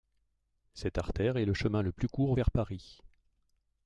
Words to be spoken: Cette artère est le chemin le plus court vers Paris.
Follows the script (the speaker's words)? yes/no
yes